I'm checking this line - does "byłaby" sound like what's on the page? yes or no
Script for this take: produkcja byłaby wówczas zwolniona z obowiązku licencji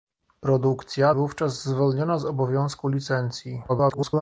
no